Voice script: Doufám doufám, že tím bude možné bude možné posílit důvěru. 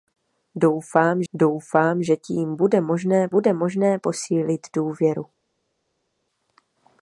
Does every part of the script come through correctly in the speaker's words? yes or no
yes